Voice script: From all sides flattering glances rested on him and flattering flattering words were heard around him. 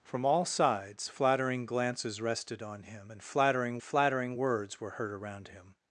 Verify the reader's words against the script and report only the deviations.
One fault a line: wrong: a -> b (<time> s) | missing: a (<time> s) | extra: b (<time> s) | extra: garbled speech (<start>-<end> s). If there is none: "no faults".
no faults